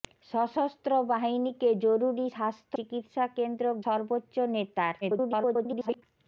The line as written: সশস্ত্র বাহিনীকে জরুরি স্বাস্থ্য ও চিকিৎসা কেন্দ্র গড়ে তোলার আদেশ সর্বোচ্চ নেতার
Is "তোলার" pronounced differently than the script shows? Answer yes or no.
yes